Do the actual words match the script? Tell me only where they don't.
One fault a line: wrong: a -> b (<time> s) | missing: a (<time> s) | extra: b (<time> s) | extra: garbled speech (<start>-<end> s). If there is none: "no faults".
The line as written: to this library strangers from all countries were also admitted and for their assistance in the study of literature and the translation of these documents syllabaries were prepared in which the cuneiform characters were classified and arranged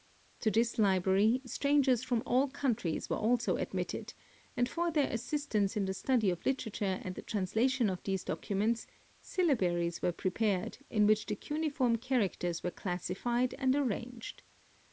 no faults